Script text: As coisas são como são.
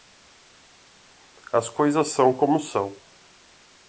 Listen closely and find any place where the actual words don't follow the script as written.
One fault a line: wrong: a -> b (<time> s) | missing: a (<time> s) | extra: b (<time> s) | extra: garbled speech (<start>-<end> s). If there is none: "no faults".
no faults